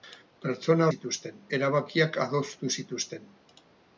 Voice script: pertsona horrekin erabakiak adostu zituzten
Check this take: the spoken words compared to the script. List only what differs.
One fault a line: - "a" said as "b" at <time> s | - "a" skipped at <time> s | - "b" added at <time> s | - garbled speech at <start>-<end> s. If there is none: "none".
- "horrekin" said as "zituzten" at 0.9 s